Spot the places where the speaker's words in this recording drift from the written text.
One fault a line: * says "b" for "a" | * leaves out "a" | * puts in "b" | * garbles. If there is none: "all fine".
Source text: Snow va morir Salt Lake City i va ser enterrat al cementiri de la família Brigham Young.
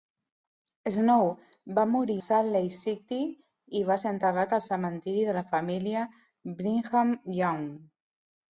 all fine